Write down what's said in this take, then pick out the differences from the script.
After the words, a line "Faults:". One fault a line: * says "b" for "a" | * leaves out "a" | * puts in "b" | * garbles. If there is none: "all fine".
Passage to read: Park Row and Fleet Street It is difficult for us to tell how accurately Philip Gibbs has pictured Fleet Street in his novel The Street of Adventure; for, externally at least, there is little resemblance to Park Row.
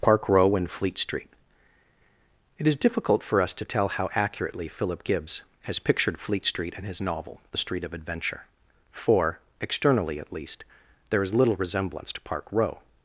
Park Row and Fleet Street It is difficult for us to tell how accurately Philip Gibbs has pictured Fleet Street in his novel The Street of Adventure; for, externally at least, there is little resemblance to Park Row.
Faults:
all fine